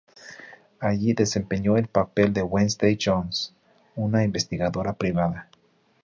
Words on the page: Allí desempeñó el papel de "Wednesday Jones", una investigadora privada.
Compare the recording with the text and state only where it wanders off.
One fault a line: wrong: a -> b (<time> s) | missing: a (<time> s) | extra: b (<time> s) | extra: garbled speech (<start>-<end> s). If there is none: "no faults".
no faults